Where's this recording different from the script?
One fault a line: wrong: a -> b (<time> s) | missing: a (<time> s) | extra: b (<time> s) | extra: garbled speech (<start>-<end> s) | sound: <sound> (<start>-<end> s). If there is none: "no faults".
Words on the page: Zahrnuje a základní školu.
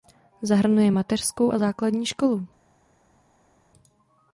extra: mateřskou (0.9 s)